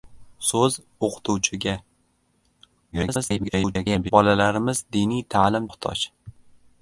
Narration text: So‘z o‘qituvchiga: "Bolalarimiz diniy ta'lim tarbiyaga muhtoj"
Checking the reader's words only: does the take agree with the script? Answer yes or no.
no